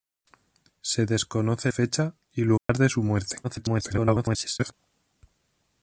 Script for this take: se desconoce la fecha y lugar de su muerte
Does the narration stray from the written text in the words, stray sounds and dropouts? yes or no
yes